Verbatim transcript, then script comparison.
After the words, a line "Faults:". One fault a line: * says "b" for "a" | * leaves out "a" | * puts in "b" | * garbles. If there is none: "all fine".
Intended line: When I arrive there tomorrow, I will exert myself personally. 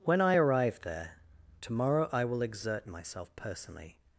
When I arrive there tomorrow, I will exert myself personally.
Faults:
all fine